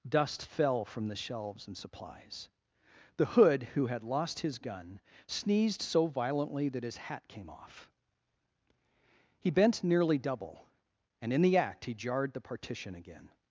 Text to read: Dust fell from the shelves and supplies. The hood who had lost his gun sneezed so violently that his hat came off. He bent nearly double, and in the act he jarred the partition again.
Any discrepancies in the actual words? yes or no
no